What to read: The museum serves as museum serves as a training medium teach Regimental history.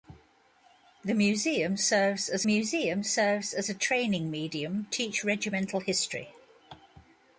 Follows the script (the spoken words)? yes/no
yes